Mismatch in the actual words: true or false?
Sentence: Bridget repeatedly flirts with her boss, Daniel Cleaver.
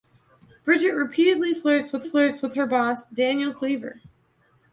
true